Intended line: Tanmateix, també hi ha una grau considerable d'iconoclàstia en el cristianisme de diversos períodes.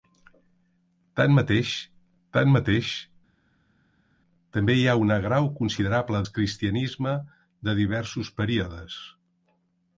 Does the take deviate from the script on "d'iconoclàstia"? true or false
true